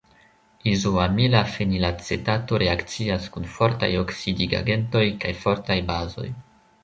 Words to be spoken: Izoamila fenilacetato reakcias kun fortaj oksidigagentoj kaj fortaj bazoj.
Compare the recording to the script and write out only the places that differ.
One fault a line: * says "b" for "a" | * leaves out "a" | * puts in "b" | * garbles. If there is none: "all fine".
all fine